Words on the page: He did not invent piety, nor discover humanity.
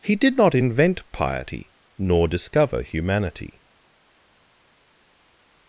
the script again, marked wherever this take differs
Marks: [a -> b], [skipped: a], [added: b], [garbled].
He did not invent piety, nor discover humanity.